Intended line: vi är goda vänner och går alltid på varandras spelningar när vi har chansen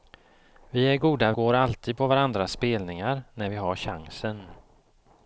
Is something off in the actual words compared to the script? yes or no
yes